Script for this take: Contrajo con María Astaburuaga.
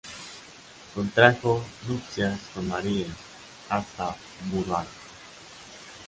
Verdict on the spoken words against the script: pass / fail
fail